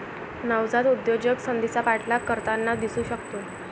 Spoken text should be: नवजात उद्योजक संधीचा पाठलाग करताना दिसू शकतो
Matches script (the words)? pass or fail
pass